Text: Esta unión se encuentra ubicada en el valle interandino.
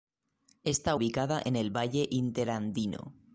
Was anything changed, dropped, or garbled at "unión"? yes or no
yes